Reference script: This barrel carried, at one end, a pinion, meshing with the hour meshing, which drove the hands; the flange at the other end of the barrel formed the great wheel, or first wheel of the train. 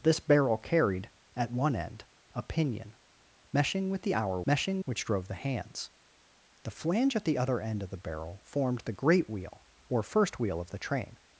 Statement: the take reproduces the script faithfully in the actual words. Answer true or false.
true